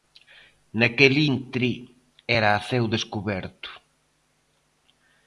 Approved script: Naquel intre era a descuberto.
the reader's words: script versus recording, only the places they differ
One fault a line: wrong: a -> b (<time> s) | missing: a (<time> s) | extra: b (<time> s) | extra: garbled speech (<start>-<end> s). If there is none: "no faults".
extra: ceo (2.7 s)